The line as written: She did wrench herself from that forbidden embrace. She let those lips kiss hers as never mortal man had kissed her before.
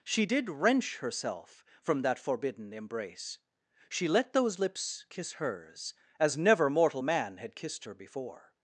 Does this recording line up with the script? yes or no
yes